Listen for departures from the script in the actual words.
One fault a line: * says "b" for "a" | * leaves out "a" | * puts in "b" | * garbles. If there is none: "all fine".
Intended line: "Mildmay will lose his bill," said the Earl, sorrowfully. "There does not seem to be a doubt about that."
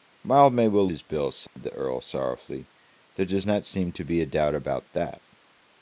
* leaves out "lose"